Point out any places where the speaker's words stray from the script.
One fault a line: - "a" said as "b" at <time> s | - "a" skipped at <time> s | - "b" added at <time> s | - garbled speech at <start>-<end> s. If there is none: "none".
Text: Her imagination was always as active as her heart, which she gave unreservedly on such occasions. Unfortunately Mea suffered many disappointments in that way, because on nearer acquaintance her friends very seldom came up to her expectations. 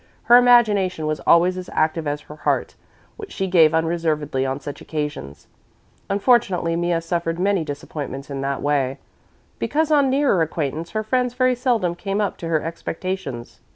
none